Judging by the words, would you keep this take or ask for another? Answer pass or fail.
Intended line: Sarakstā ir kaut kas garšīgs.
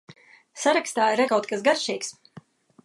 pass